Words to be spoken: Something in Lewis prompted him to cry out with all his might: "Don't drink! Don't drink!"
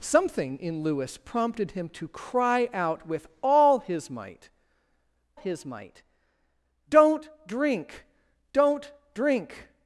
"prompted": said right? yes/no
yes